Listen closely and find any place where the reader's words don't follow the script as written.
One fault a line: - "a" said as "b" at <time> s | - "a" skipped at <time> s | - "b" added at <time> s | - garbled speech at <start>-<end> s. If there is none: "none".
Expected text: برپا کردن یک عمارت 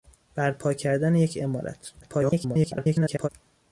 - garbled speech at 2.0-3.3 s